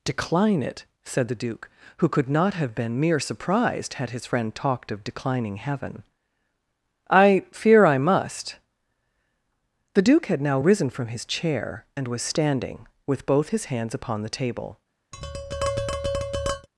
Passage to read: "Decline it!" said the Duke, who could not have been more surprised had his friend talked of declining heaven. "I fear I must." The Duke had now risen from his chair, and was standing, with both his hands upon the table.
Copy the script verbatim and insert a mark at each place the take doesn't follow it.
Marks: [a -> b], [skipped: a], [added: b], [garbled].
"Decline it!" said the Duke, who could not have been [more -> mere] surprised had his friend talked of declining heaven. "I fear I must." The Duke had now risen from his chair, and was standing, with both his hands upon the table.